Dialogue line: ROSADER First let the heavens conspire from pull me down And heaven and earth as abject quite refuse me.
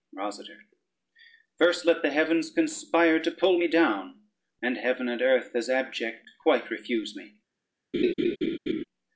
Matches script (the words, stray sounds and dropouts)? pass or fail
fail